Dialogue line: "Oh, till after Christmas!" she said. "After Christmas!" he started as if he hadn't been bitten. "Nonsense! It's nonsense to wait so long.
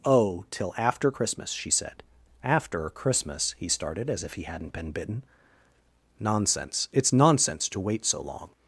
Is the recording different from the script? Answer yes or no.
no